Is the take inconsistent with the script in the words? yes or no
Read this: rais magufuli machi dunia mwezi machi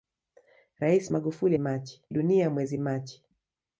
no